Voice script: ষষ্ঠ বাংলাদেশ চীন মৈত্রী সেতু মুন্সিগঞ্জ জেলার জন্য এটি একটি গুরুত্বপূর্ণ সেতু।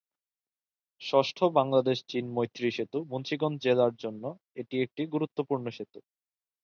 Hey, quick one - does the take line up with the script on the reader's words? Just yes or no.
yes